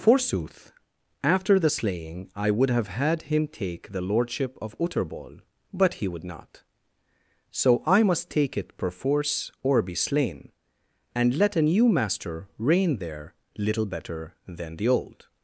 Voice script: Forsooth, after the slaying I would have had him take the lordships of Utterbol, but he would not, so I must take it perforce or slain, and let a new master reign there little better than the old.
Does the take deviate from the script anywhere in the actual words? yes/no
yes